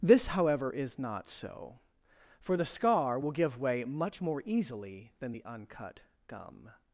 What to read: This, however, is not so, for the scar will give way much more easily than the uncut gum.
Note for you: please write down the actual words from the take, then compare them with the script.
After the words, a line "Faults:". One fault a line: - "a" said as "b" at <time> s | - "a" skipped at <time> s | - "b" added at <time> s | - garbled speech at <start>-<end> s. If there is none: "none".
This, however, is not so, for the scar will give way much more easily than the uncut gum.
Faults:
none